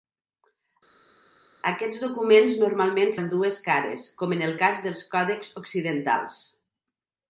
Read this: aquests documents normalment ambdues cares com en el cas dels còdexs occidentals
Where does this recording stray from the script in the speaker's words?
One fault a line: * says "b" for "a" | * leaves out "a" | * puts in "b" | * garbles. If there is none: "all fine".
all fine